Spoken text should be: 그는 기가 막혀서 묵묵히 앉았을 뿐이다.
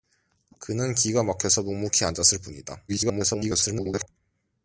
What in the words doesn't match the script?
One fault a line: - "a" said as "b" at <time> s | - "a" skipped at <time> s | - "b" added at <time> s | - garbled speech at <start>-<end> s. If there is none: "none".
- garbled speech at 2.9-4.1 s